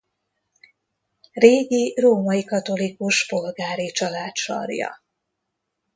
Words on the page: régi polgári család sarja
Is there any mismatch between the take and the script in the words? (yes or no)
yes